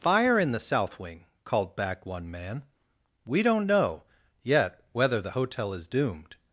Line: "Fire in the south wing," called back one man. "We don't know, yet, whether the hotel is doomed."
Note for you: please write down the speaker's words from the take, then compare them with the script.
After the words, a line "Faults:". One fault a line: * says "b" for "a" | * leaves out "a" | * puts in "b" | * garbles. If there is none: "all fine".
"Fire in the south wing," called back one man. "We don't know, yet, whether the hotel is doomed."
Faults:
all fine